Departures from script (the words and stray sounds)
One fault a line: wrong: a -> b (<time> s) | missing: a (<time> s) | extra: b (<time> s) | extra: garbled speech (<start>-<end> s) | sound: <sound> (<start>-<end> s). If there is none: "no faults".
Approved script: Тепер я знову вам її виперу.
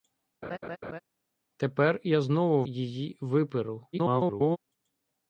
sound: laugh (0.4-1.0 s)
missing: вам (2.6 s)
extra: garbled speech (3.9-4.6 s)